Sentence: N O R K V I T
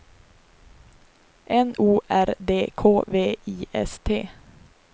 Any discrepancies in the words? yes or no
yes